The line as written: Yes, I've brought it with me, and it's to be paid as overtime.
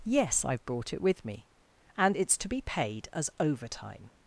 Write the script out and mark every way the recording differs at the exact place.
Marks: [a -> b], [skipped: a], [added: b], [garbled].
Yes, I've brought it with me, and it's to be paid as overtime.